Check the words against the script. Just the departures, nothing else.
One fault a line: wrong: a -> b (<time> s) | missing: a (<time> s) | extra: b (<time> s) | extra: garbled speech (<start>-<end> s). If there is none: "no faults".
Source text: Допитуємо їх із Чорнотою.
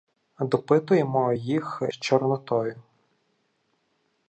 missing: із (1.8 s)